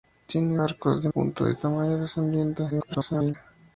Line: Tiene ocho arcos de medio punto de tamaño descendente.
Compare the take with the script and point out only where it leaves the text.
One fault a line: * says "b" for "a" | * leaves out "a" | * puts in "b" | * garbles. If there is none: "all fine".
* leaves out "ocho"
* leaves out "medio"
* garbles